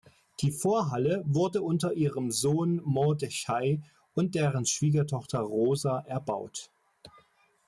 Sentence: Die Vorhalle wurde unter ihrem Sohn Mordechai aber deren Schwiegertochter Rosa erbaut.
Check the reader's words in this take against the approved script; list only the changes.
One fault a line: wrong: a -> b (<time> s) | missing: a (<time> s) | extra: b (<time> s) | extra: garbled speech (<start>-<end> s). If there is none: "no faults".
wrong: aber -> und (4.2 s)